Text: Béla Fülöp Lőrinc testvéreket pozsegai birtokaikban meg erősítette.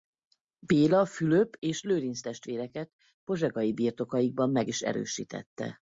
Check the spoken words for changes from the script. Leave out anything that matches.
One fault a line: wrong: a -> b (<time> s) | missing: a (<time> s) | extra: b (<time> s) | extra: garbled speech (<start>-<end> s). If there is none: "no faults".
extra: és (1.6 s)
extra: is (4.7 s)